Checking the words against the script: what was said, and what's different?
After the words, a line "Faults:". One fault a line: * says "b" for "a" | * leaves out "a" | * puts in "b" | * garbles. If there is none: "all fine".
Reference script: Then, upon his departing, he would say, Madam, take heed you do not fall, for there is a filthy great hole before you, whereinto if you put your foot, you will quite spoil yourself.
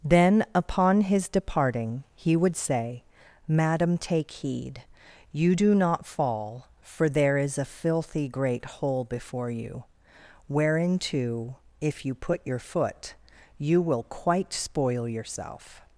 Then, upon his departing, he would say, Madam, take heed you do not fall, for there is a filthy great hole before you, whereinto if you put your foot, you will quite spoil yourself.
Faults:
all fine